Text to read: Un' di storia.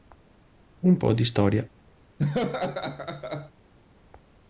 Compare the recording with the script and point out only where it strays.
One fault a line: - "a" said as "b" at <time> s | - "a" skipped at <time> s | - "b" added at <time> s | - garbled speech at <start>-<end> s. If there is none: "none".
- "po" added at 1.0 s